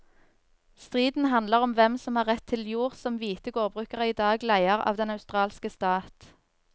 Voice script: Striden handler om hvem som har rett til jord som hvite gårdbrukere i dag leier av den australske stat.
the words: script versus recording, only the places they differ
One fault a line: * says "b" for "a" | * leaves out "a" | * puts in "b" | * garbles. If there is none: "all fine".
all fine